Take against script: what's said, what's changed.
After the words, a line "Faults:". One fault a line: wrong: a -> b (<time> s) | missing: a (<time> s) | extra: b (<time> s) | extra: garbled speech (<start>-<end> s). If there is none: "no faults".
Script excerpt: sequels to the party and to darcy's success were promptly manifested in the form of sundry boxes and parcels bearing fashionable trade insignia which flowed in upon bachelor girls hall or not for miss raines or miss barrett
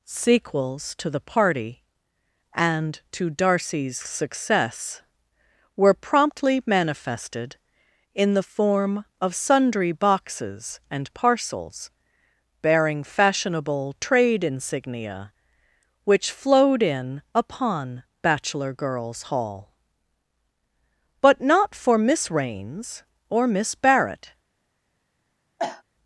sequels to the party and to darcy's success were promptly manifested in the form of sundry boxes and parcels bearing fashionable trade insignia which flowed in upon bachelor girls hall but not for miss raines or miss barrett
Faults:
wrong: or -> but (21.2 s)